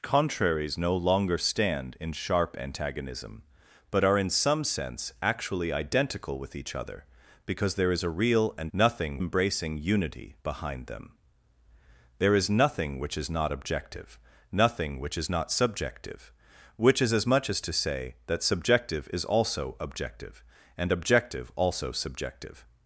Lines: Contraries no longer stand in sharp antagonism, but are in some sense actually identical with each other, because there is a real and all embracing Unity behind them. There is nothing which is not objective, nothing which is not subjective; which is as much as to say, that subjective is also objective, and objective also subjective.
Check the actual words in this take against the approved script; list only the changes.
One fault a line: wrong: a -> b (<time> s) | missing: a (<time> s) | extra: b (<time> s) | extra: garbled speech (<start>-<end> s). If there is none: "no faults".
wrong: all -> nothing (8.7 s)